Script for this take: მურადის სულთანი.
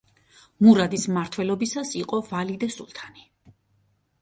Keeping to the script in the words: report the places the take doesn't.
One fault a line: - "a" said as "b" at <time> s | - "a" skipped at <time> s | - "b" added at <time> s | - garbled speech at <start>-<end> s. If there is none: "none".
- "მმართველობისას იყო ვალიდე" added at 1.1 s